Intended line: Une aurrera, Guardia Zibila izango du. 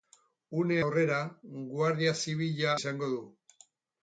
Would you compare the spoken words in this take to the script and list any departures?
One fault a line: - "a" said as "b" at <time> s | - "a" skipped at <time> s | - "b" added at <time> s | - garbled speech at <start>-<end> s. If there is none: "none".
none